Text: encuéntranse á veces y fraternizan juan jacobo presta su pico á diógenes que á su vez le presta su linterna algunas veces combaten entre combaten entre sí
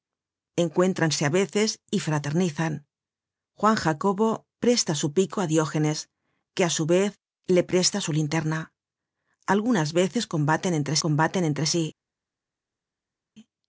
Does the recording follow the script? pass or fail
pass